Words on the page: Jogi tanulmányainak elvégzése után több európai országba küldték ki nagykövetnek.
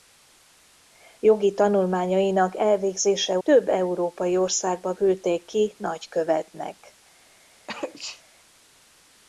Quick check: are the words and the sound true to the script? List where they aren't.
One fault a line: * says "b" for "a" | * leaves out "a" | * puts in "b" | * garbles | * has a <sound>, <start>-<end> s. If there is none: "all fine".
* leaves out "után"
* has a sneeze, 7.7-8.2 s